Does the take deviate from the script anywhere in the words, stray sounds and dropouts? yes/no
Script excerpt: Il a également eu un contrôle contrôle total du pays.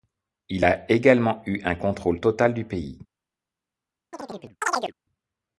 yes